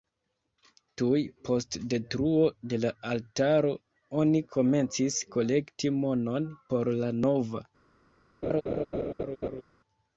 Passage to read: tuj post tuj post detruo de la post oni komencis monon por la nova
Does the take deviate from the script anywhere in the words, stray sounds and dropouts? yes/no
yes